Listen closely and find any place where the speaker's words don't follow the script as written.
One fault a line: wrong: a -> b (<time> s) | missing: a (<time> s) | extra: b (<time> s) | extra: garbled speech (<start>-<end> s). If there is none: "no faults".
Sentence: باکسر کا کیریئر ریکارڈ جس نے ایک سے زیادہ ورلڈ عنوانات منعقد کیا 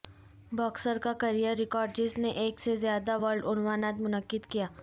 no faults